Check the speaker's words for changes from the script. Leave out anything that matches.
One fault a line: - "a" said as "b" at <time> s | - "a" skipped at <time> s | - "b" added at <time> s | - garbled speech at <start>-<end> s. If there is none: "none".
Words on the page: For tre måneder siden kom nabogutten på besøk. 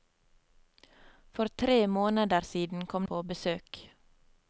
- "nabogutten" skipped at 3.0 s